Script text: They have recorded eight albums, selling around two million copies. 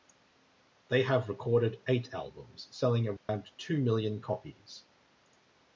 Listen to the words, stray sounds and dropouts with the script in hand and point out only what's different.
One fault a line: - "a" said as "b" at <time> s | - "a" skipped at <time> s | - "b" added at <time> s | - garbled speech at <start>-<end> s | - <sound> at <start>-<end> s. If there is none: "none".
- dropout at 3.2-3.3 s